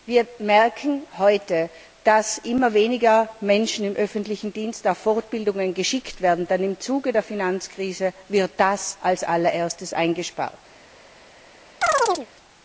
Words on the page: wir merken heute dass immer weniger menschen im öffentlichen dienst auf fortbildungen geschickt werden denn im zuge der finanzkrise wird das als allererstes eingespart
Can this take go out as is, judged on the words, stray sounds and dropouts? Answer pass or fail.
fail